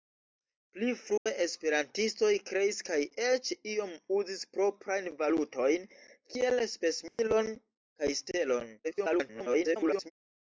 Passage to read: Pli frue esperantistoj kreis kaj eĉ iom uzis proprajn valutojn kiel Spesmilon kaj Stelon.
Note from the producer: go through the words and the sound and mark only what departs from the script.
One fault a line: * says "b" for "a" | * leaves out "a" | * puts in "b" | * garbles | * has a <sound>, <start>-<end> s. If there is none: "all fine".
* has a dropout, 1.2-1.3 s
* has a dropout, 7.1-7.2 s
* garbles